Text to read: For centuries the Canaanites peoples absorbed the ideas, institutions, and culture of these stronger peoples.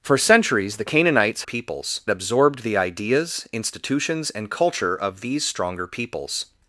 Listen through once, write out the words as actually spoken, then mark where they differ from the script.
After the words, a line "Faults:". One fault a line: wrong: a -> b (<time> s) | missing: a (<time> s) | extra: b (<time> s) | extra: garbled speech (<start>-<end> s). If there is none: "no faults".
For centuries the Canaanites peoples absorbed the ideas, institutions, and culture of these stronger peoples.
Faults:
no faults